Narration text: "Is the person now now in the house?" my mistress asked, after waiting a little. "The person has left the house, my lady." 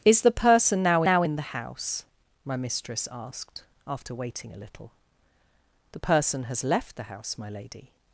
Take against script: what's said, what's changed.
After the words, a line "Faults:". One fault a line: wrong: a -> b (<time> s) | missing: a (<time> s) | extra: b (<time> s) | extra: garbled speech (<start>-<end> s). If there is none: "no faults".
"Is the person now now in the house?" my mistress asked, after waiting a little. "The person has left the house, my lady."
Faults:
no faults